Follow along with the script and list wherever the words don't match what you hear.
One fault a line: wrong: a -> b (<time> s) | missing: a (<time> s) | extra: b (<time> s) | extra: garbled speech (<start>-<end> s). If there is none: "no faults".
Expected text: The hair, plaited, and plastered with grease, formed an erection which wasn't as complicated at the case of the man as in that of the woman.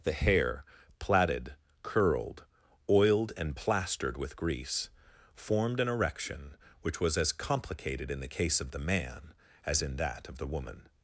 extra: curled oiled (1.8 s)
wrong: wasn't -> was (7.0 s)
wrong: at -> in (8.1 s)